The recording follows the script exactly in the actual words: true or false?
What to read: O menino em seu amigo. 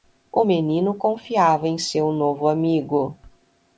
false